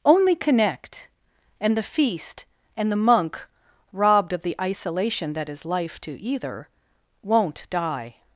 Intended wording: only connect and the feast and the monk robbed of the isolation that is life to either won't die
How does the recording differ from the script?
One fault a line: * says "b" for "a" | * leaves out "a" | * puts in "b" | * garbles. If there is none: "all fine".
all fine